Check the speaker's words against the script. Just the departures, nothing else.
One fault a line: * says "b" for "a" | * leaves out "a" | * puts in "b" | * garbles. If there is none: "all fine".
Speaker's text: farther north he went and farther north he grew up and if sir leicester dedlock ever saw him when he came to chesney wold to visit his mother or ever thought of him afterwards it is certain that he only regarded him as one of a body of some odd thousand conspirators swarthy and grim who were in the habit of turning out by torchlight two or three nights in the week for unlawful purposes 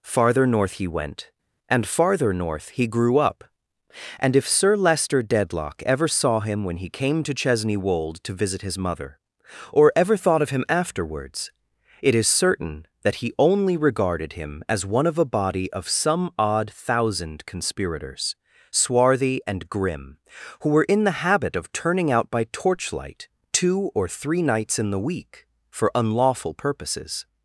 all fine